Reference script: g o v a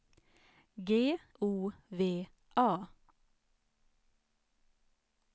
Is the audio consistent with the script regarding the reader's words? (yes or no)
yes